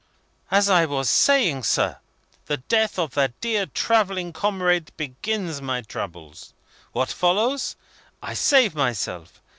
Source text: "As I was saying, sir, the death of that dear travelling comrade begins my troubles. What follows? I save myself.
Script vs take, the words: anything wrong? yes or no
no